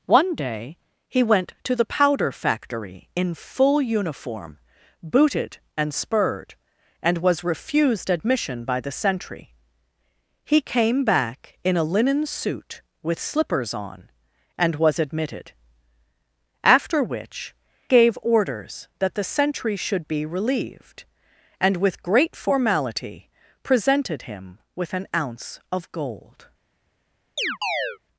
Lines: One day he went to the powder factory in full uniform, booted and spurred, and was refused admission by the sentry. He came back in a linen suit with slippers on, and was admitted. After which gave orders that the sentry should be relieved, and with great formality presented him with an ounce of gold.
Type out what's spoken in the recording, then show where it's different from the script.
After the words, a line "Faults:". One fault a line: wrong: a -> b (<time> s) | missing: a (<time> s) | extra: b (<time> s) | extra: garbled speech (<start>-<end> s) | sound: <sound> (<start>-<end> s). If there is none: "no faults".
One day he went to the powder factory in full uniform, booted and spurred, and was refused admission by the sentry. He came back in a linen suit with slippers on, and was admitted. After which gave orders that the sentry should be relieved, and with great formality presented him with an ounce of gold.
Faults:
sound: chirp (27.4-28.0 s)